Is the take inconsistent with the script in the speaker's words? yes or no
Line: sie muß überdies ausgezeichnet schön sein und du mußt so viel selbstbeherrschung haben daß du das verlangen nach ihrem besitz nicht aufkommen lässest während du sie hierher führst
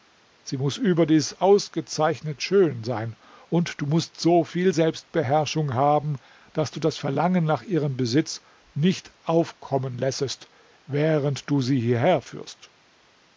no